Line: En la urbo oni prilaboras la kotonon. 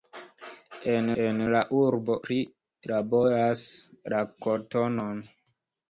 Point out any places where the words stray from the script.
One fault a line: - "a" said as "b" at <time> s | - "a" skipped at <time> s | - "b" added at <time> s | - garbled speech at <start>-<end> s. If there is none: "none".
- "en" added at 1.2 s
- "oni" skipped at 2.1 s